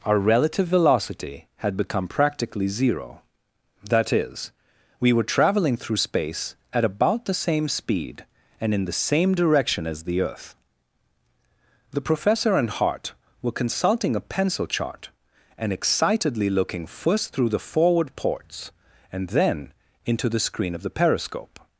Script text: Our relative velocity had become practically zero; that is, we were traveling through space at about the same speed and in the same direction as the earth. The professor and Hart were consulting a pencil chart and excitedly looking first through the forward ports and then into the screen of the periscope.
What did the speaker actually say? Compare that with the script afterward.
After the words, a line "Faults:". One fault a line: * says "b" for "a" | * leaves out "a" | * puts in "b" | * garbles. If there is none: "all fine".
Our relative velocity had become practically zero; that is, we were traveling through space at about the same speed and in the same direction as the earth. The professor and Hart were consulting a pencil chart and excitedly looking first through the forward ports and then into the screen of the periscope.
Faults:
all fine